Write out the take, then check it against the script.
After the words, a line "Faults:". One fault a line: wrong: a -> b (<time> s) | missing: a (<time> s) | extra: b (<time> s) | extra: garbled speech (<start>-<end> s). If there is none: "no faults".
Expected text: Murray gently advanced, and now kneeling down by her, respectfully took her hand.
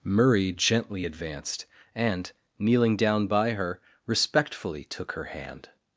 Murray gently advanced, and kneeling down by her, respectfully took her hand.
Faults:
missing: now (2.3 s)